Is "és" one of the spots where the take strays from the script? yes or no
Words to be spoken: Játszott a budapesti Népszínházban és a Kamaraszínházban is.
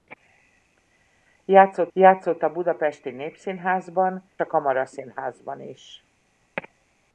yes